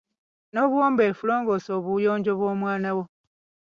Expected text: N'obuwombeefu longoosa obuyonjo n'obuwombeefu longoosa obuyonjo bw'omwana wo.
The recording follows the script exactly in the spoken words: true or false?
false